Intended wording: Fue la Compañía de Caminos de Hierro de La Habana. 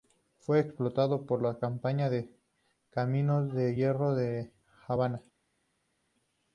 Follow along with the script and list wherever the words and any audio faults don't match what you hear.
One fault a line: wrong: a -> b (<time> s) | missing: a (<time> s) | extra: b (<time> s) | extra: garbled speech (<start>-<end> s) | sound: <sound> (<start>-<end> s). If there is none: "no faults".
extra: explotado por (0.6 s)